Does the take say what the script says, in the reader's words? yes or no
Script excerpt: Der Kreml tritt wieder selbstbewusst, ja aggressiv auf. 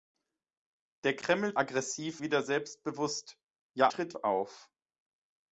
no